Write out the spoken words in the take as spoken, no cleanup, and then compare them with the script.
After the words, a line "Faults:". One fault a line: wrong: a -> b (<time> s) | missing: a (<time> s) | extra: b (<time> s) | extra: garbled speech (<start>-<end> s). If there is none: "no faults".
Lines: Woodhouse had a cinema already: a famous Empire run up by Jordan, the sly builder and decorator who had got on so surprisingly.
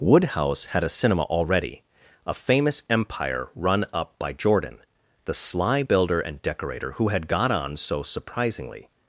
Woodhouse had a cinema already: a famous Empire run up by Jordan, the sly builder and decorator who had got on so surprisingly.
Faults:
no faults